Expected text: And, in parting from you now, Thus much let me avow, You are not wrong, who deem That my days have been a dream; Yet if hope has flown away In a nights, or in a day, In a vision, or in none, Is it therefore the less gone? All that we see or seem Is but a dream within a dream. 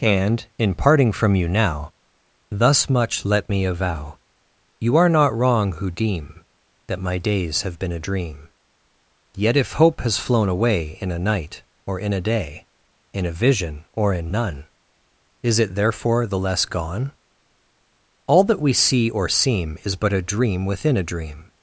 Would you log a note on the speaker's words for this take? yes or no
yes